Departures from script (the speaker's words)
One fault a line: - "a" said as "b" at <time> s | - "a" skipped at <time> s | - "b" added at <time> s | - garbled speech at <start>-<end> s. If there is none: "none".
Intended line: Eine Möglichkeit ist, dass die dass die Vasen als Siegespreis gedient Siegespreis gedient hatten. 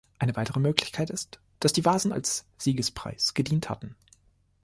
- "weitere" added at 0.3 s
- "dass die" skipped at 1.8 s
- "Siegespreis gedient" skipped at 3.7 s